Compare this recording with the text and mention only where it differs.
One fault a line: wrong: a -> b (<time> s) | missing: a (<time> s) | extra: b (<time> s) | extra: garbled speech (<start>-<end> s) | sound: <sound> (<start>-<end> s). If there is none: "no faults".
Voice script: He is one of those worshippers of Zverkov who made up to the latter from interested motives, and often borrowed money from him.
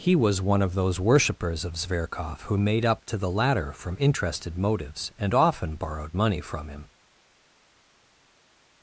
wrong: is -> was (0.1 s)